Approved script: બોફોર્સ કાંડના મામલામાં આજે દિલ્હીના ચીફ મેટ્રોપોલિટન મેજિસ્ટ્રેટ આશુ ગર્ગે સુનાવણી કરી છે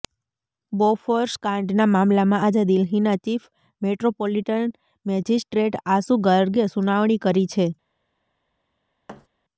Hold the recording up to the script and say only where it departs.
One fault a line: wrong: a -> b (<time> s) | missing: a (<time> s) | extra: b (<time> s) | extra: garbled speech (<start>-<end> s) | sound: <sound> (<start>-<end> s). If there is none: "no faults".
sound: thud (9.1-9.3 s)